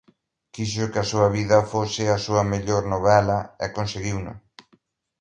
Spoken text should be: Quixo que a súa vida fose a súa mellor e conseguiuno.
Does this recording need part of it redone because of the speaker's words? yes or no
yes